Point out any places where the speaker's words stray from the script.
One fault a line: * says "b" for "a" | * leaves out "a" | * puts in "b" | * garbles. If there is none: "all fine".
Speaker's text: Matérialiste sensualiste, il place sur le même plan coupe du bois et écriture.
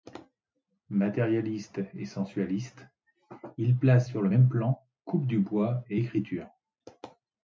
* puts in "et"